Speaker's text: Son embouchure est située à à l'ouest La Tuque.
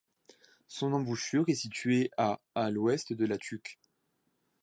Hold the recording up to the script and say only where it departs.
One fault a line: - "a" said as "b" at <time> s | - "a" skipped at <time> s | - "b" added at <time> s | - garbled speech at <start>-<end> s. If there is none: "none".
- "de" added at 3.1 s